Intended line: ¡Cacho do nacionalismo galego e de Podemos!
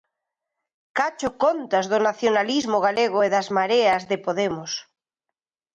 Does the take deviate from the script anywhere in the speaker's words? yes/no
yes